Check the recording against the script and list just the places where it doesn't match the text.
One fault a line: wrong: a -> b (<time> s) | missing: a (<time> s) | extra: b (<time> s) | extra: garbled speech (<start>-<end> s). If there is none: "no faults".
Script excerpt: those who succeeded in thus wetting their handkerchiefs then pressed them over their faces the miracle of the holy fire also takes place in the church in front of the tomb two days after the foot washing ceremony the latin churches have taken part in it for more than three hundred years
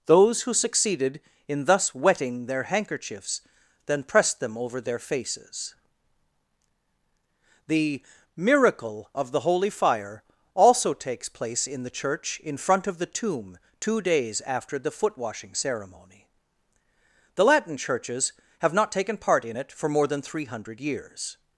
extra: not (18.7 s)